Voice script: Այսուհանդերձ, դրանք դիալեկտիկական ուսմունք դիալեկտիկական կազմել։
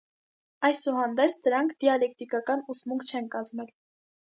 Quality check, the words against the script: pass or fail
fail